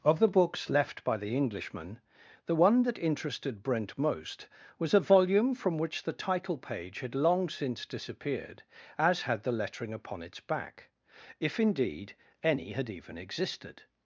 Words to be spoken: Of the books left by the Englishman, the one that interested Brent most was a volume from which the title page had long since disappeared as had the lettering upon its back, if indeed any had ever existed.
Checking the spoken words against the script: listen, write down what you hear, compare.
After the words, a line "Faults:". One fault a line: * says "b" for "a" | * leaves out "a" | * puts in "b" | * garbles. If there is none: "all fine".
Of the books left by the Englishman, the one that interested Brent most was a volume from which the title page had long since disappeared as had the lettering upon its back, if indeed any had even existed.
Faults:
* says "even" for "ever"